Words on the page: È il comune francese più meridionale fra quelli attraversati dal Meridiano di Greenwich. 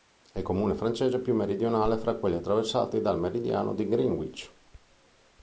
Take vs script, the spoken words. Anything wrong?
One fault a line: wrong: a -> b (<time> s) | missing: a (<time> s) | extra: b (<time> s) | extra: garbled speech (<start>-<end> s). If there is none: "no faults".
no faults